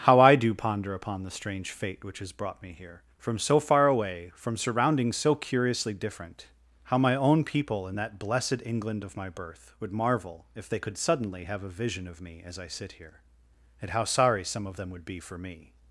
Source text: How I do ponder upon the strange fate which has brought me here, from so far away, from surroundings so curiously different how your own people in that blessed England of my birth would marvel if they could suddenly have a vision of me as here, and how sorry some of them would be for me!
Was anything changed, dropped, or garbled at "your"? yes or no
yes